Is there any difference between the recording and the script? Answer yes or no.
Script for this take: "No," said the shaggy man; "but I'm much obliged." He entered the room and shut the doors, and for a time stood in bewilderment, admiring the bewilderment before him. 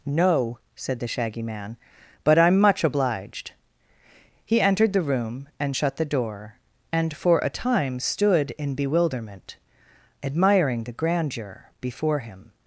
yes